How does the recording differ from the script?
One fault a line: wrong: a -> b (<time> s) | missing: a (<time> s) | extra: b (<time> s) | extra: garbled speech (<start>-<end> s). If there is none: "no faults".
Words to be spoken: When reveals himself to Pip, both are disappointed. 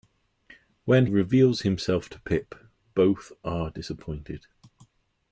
no faults